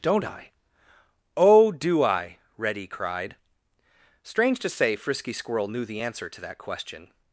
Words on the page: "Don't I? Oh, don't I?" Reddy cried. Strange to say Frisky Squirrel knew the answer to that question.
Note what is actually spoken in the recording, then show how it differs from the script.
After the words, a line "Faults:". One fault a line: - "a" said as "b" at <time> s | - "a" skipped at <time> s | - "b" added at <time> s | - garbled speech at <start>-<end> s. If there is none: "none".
"Don't I? Oh, do I?" Reddy cried. Strange to say Frisky Squirrel knew the answer to that question.
Faults:
- "don't" said as "do" at 1.7 s